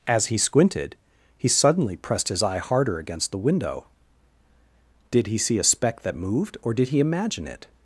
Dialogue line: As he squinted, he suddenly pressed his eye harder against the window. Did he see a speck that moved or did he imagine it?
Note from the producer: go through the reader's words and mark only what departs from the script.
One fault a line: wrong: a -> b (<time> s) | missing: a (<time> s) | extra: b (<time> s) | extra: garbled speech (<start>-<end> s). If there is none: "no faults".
no faults